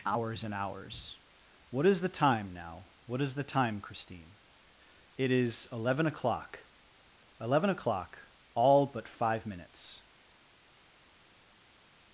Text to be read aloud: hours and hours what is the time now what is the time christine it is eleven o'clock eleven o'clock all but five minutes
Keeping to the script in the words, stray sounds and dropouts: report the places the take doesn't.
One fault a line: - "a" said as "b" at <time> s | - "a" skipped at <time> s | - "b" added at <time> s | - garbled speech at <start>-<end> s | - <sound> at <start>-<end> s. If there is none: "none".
none